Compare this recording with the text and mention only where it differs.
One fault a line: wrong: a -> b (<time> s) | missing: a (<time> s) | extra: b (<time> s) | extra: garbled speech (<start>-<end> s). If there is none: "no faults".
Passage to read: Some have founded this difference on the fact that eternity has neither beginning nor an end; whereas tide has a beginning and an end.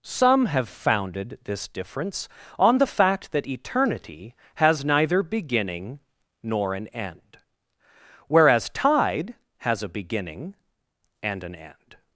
no faults